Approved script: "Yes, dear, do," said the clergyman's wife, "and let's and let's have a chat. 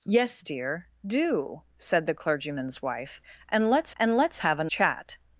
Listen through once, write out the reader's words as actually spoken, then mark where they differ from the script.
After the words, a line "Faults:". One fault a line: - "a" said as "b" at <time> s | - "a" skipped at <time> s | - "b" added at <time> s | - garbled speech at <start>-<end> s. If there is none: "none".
"Yes, dear, do," said the clergyman's wife, "and let's and let's have a chat.
Faults:
none